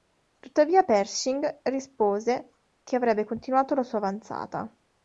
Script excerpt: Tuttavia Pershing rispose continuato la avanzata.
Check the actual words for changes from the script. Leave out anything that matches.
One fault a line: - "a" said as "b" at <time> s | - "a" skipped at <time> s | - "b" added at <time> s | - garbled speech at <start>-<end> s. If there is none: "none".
- "che avrebbe" added at 2.8 s
- "sua" added at 3.8 s